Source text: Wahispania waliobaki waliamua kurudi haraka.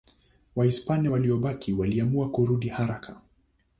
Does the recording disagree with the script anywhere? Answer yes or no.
no